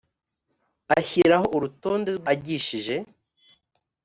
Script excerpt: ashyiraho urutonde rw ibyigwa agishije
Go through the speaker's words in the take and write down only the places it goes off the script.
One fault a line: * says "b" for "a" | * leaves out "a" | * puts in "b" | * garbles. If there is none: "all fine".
* leaves out "ibyigwa"